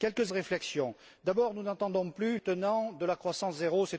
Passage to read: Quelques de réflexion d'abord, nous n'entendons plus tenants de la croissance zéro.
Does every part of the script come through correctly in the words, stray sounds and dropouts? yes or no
yes